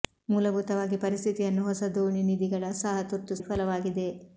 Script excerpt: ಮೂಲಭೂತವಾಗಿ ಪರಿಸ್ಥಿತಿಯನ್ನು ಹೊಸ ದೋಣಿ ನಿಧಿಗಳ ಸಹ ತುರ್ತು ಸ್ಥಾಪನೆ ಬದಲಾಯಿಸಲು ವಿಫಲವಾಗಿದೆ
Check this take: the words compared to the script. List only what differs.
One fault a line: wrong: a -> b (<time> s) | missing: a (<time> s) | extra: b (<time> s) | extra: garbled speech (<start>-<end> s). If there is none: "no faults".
missing: ಸ್ಥಾಪನೆ ಬದಲಾಯಿಸಲು (3.4 s)